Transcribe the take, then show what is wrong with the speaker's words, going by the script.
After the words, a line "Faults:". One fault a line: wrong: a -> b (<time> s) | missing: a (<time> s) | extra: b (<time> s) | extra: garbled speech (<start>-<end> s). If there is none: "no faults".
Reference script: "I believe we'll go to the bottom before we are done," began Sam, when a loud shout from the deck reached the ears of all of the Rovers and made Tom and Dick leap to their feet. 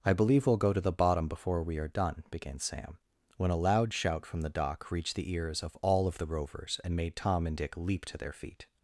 "I believe we'll go to the bottom before we are done," began Sam, when a loud shout from the dock reached the ears of all of the Rovers and made Tom and Dick leap to their feet.
Faults:
wrong: deck -> dock (4.5 s)